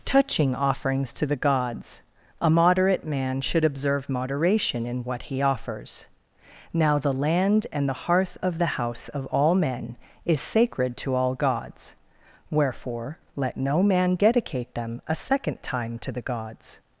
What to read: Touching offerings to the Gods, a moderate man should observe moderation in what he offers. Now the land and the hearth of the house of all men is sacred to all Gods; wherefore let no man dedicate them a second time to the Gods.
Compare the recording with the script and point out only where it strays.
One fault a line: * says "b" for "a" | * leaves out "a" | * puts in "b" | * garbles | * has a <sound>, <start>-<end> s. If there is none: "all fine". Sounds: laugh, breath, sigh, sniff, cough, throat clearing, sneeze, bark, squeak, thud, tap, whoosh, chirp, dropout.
all fine